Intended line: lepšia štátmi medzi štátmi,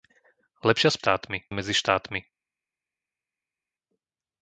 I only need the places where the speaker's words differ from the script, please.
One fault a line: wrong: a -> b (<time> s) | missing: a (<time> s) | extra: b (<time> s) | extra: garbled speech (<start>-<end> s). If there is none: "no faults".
no faults